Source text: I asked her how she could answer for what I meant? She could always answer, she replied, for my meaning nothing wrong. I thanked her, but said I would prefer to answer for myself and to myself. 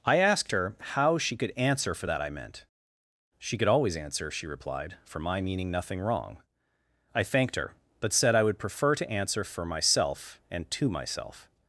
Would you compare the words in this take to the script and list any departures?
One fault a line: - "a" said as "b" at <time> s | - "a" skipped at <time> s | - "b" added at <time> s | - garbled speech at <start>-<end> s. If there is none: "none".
- "what" said as "that" at 2.1 s